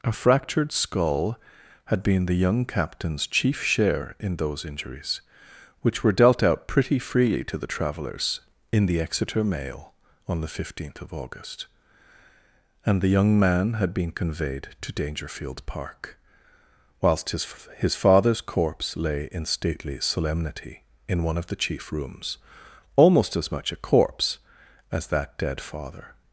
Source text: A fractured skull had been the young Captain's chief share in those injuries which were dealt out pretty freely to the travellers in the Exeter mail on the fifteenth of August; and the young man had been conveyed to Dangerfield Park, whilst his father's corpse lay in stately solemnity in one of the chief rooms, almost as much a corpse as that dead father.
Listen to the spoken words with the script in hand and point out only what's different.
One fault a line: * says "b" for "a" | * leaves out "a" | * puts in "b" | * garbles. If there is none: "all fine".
* puts in "his"